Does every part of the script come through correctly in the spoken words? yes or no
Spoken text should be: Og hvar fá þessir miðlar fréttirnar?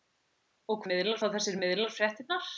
no